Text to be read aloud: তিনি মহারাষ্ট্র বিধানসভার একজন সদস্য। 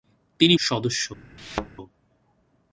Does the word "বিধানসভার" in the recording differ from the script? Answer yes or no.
yes